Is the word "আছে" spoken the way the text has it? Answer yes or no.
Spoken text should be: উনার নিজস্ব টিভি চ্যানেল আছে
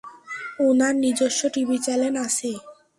yes